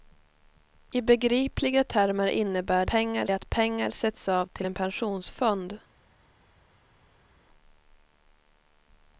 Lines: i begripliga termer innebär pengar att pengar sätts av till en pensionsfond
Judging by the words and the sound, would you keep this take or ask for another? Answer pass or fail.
pass